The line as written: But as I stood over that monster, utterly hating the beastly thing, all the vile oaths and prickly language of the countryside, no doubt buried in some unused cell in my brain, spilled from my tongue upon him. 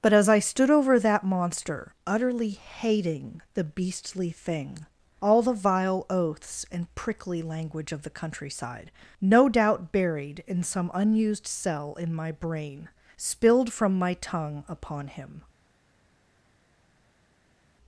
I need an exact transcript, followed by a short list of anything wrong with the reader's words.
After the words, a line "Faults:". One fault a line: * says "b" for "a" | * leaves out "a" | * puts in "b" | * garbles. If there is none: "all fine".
But as I stood over that monster, utterly hating the beastly thing, all the vile oaths and prickly language of the countryside, no doubt buried in some unused cell in my brain, spilled from my tongue upon him.
Faults:
all fine